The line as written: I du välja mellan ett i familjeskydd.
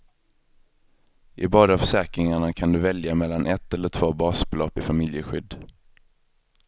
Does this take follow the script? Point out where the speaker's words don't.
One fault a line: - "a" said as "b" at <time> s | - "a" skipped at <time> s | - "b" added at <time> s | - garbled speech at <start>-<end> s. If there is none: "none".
- "båda försäkringarna kan" added at 1.5 s
- "eller två basbelopp" added at 3.7 s